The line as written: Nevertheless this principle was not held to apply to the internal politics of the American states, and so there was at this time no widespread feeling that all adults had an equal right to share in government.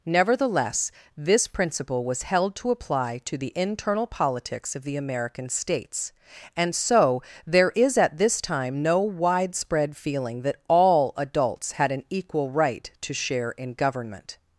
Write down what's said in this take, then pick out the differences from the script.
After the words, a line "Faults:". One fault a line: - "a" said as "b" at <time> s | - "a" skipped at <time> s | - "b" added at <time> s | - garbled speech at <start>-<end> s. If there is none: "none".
Nevertheless this principle was held to apply to the internal politics of the American states, and so there is at this time no widespread feeling that all adults had an equal right to share in government.
Faults:
- "not" skipped at 2.2 s
- "was" said as "is" at 7.8 s